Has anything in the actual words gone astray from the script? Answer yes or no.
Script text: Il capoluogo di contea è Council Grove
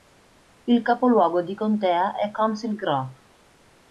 no